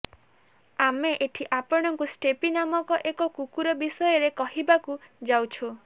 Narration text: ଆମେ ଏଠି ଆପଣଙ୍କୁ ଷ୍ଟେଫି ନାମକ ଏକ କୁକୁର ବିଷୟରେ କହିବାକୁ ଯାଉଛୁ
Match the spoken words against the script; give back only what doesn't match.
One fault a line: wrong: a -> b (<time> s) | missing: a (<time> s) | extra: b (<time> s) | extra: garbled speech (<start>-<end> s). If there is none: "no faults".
no faults